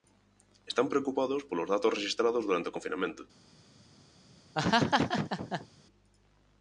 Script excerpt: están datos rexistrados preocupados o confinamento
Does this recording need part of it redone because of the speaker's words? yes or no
yes